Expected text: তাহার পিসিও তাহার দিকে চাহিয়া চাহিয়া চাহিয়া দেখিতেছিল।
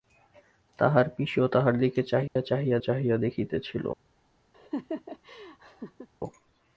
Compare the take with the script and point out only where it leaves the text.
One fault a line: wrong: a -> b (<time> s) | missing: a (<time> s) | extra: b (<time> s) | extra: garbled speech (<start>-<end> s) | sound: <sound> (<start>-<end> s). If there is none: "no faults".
sound: dropout (2.3-2.4 s)
sound: laugh (4.5-6.1 s)